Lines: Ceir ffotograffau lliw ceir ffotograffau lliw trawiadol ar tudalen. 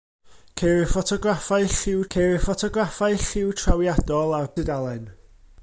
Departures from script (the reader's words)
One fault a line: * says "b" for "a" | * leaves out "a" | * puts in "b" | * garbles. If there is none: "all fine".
all fine